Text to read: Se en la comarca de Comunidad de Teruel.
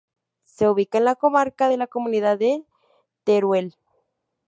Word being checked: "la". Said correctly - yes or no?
yes